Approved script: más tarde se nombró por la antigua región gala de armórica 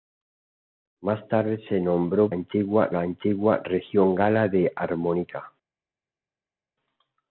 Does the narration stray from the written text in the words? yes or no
yes